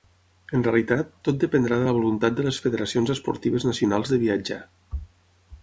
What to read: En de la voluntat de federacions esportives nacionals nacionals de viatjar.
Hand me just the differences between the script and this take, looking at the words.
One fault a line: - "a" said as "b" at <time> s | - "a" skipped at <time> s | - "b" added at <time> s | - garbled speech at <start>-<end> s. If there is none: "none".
- "realitat tot dependrà" added at 0.7 s
- "les" added at 2.5 s
- "nacionals" skipped at 4.1 s